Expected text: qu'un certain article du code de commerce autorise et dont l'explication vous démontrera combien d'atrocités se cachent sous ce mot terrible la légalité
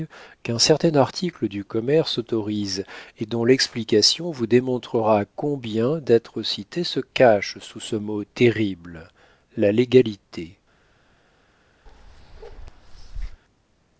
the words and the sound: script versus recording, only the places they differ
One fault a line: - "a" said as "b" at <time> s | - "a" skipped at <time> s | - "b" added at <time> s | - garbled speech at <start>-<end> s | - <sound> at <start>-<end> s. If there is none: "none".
- "code de" skipped at 1.6 s
- bark at 11.9-13.4 s